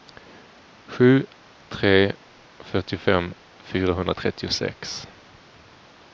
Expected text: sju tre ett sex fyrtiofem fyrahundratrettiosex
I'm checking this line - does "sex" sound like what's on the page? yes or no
no